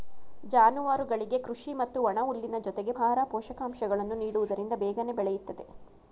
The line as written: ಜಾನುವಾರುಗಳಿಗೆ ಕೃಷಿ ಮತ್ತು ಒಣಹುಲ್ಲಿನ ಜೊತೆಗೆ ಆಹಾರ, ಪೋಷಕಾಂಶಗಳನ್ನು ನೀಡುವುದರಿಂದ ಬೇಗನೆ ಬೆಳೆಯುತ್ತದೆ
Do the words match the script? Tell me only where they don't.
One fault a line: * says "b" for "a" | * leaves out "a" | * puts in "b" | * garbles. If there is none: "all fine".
all fine